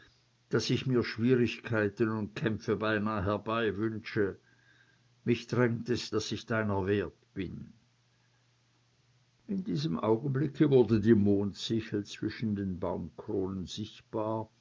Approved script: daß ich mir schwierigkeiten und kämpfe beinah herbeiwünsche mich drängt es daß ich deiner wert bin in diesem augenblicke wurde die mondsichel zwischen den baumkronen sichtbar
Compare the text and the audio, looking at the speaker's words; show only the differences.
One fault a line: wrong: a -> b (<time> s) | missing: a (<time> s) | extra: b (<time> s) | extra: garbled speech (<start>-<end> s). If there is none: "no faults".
no faults